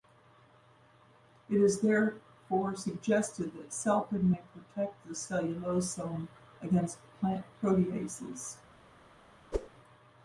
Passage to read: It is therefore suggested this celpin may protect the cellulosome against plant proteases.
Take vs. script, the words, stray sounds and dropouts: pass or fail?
fail